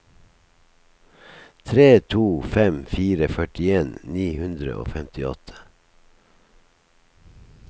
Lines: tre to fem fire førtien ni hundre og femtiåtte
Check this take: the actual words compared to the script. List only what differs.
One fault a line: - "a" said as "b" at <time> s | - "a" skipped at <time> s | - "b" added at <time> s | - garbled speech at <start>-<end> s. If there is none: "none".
none